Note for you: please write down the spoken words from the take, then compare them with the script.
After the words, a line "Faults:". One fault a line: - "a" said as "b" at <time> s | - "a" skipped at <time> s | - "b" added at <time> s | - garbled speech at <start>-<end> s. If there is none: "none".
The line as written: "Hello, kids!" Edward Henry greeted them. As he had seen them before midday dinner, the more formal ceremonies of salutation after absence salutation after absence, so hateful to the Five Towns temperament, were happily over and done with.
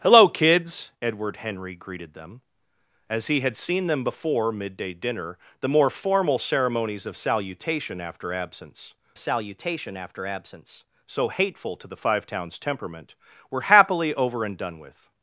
"Hello, kids!" Edward Henry greeted them. As he had seen them before midday dinner, the more formal ceremonies of salutation after absence salutation after absence, so hateful to the Five Towns temperament, were happily over and done with.
Faults:
none